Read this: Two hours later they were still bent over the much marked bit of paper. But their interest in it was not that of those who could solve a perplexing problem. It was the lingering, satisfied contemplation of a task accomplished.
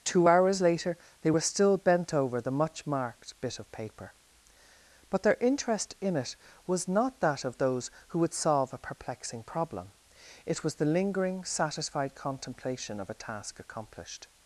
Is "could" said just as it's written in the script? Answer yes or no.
no